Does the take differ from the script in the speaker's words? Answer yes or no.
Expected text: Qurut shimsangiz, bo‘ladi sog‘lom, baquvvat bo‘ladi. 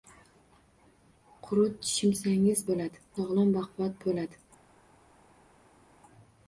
no